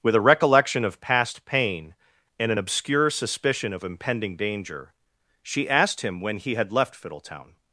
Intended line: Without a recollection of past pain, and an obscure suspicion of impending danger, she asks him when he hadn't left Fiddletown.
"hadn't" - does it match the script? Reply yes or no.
no